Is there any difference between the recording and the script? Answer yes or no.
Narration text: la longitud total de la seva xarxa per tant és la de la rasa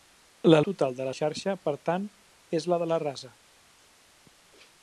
yes